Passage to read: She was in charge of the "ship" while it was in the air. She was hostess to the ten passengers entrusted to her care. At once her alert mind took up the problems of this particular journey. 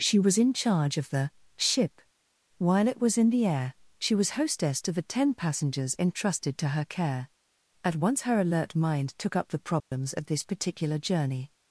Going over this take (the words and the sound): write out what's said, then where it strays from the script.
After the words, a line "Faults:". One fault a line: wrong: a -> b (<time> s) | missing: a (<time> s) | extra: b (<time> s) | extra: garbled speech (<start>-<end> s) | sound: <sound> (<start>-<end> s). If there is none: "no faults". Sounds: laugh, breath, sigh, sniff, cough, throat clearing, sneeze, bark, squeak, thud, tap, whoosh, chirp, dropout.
She was in charge of the "ship" while it was in the air. She was hostess to the ten passengers entrusted to her care. At once her alert mind took up the problems of this particular journey.
Faults:
sound: dropout (9.8-9.9 s)